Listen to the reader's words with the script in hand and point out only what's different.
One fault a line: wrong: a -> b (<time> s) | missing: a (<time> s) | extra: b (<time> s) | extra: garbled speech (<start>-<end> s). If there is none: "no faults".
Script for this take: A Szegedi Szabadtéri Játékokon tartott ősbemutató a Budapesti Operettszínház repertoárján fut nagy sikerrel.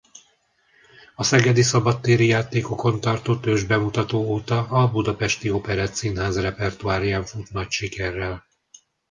extra: óta (4.2 s)